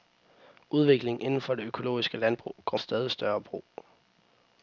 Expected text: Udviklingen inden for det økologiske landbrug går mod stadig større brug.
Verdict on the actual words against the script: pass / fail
fail